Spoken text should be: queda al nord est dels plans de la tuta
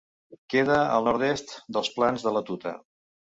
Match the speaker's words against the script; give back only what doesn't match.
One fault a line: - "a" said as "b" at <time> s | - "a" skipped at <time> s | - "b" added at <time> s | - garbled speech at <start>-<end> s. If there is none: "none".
none